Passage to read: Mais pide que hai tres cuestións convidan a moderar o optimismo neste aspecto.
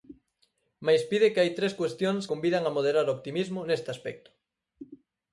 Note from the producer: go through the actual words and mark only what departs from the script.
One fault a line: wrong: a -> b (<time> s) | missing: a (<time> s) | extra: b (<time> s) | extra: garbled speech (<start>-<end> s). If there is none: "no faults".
no faults